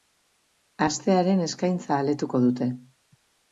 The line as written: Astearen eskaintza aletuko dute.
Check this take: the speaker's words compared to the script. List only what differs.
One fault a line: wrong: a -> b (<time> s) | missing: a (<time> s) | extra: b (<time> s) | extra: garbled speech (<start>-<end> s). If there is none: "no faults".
no faults